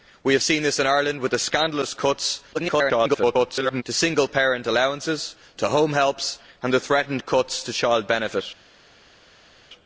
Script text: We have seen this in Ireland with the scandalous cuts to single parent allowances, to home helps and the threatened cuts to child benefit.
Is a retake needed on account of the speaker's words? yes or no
yes